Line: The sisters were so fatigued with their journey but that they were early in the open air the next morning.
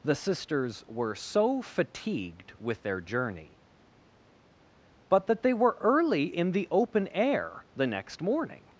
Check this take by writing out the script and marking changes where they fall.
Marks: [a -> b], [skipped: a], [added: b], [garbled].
The sisters were so fatigued with their journey but that they were early in the open air the next morning.